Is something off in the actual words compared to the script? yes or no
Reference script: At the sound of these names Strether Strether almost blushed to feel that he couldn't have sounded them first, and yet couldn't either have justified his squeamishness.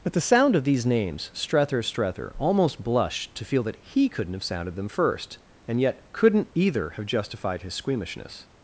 no